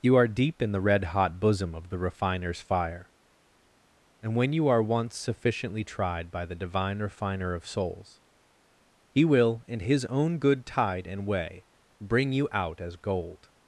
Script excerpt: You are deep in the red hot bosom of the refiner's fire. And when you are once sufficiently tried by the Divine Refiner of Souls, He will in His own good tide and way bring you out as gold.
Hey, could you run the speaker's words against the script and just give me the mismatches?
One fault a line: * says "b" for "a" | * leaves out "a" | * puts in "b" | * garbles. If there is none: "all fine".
all fine